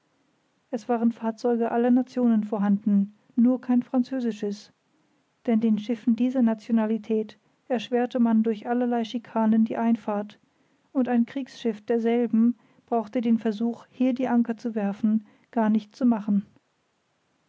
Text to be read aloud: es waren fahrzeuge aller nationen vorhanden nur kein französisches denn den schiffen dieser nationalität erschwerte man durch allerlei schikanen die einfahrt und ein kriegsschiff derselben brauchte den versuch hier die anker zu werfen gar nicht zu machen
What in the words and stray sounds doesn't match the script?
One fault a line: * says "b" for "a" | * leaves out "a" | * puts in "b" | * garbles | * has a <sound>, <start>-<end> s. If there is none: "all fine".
all fine